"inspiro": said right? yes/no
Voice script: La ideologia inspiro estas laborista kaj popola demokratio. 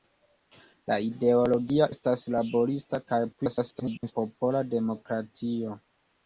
no